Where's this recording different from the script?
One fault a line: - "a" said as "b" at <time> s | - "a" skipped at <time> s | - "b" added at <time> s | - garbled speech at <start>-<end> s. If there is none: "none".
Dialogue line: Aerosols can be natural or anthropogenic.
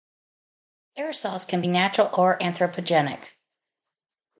none